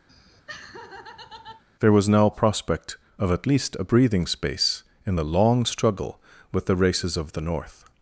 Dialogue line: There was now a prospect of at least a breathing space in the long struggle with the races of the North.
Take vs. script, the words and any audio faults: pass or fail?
fail